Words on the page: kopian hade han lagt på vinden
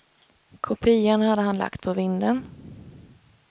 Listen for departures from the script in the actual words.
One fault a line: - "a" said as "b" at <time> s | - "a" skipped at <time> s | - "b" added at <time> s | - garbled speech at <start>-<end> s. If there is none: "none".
none